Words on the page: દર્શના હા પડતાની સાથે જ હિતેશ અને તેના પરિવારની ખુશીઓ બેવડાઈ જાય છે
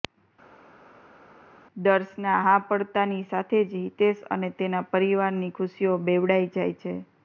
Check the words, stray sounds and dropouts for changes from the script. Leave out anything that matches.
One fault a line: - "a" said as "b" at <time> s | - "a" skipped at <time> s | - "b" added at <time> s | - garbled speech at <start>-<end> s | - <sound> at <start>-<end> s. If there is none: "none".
none